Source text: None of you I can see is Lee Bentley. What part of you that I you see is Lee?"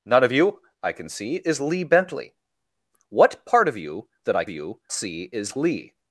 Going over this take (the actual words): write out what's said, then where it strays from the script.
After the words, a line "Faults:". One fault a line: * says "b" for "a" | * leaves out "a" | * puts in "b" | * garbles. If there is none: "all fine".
None of you I can see is Lee Bentley. What part of you that I you see is Lee?"
Faults:
all fine